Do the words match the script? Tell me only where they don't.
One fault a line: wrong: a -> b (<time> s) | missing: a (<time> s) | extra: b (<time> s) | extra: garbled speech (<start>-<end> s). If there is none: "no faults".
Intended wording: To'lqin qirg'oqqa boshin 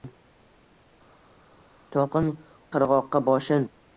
no faults